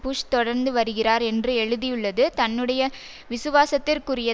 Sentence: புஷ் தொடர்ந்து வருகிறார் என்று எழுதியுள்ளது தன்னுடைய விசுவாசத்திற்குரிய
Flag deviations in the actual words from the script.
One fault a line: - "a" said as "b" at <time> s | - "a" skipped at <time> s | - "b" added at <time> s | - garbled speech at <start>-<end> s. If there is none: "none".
none